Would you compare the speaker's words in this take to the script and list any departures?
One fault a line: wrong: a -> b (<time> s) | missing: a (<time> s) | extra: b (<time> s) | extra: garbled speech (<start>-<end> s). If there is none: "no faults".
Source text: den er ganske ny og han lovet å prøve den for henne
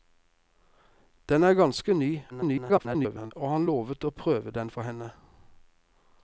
extra: garbled speech (2.3-3.3 s)